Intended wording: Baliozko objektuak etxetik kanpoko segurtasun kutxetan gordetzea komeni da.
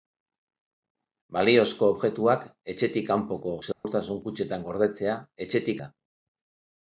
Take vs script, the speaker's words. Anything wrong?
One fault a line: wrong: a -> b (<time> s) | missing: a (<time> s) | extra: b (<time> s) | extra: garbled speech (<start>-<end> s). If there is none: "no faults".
wrong: komeni -> etxetik (5.5 s)